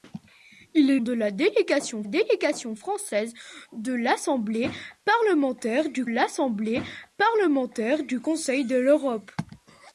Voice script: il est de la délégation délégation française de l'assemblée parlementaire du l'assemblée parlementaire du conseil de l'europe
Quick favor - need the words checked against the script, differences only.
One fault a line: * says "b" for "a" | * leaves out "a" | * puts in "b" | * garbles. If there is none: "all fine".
all fine